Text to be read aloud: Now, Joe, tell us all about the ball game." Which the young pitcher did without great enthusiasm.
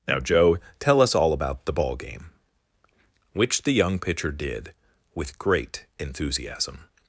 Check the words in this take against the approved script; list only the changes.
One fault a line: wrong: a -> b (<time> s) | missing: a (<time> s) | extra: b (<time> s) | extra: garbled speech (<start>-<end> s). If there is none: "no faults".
wrong: without -> with (5.1 s)